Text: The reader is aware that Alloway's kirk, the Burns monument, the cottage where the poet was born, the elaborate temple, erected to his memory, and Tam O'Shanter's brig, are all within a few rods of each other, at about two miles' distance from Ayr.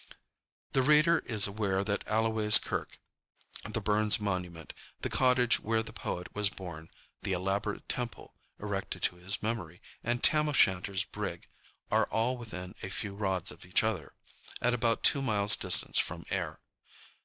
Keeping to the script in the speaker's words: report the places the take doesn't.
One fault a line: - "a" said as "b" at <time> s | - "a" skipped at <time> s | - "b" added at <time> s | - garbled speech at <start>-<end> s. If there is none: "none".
none